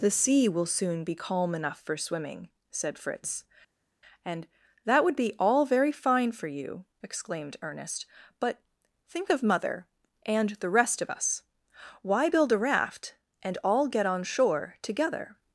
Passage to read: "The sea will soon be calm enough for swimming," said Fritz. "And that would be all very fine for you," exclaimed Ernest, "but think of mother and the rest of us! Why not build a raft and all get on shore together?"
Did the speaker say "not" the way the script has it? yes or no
no